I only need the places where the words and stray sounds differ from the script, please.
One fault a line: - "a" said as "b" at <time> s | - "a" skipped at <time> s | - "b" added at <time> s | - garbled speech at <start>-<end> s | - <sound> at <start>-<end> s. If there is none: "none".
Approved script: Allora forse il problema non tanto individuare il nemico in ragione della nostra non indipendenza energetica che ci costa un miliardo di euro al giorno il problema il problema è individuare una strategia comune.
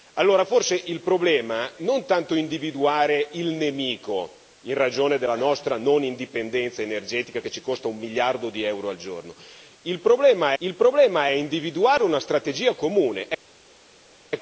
none